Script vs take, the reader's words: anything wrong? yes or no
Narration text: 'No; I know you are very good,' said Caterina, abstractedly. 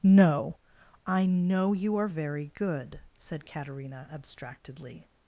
no